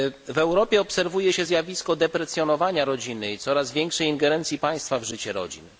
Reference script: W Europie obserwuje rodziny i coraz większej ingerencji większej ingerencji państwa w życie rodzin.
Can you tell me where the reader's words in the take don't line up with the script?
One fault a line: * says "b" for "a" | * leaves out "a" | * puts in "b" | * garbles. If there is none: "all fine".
* puts in "się zjawisko deprecjonowania"
* leaves out "większej ingerencji"